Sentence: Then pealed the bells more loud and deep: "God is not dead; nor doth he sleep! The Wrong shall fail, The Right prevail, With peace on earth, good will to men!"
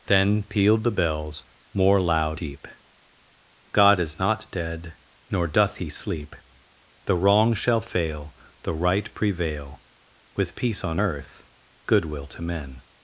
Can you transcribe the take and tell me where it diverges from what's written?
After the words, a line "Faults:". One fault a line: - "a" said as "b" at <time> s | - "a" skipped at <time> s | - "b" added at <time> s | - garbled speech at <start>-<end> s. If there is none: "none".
Then pealed the bells more loud deep: "God is not dead; nor doth he sleep! The Wrong shall fail, The Right prevail, With peace on earth, good will to men!"
Faults:
- "and" skipped at 2.4 s